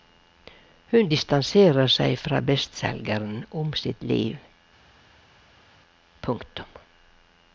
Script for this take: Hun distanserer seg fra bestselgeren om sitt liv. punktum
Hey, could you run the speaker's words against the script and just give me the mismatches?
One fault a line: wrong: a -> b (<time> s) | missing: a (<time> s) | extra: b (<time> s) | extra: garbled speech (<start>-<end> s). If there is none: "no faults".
no faults